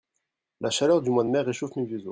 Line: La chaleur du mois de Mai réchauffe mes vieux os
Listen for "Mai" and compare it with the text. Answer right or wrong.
right